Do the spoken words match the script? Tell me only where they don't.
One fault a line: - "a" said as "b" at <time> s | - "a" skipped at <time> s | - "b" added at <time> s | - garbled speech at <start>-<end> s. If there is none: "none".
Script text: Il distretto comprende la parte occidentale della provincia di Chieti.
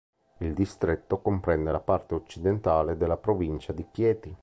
none